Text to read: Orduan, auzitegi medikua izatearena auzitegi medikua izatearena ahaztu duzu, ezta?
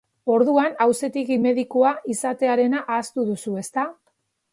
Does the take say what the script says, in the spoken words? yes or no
no